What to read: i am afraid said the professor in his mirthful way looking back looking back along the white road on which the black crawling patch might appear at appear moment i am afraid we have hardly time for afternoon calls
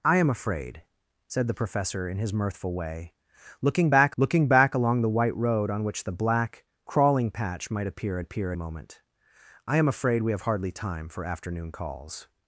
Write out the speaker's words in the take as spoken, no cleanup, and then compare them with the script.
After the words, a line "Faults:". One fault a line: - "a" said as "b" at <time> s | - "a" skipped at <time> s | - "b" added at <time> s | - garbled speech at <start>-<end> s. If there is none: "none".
i am afraid said the professor in his mirthful way looking back looking back along the white road on which the black crawling patch might appear at appear moment i am afraid we have hardly time for afternoon calls
Faults:
none